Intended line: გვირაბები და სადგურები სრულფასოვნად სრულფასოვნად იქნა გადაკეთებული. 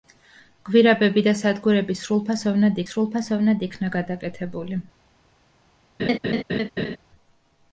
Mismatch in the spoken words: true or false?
false